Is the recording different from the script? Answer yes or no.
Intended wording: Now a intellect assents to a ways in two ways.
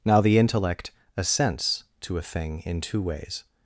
yes